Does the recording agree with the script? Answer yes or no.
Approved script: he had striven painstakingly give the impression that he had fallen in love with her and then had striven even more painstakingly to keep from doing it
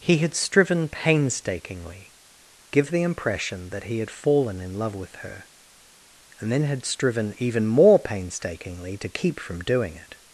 yes